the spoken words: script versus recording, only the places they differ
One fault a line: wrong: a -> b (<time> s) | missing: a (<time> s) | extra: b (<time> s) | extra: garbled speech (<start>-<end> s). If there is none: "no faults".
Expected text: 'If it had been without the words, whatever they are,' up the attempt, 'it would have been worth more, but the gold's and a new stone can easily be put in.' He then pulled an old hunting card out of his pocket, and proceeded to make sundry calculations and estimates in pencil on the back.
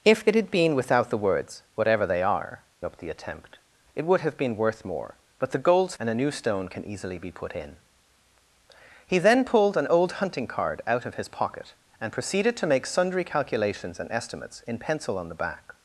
no faults